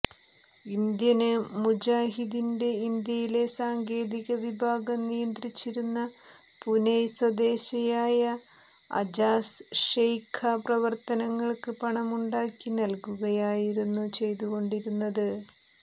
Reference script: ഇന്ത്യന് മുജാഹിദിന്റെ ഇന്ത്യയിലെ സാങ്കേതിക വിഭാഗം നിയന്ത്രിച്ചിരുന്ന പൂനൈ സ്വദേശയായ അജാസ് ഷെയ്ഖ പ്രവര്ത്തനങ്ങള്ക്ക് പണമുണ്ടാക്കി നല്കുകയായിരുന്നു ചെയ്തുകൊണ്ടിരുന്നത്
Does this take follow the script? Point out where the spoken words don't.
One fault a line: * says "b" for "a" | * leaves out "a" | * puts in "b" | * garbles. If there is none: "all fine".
all fine